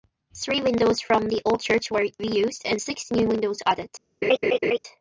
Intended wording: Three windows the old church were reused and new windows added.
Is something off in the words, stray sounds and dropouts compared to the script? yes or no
yes